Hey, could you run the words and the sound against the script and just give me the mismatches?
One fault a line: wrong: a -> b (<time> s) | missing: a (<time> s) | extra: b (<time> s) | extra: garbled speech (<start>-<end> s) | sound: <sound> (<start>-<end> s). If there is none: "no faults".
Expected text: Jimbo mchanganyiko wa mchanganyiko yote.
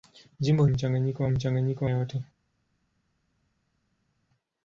no faults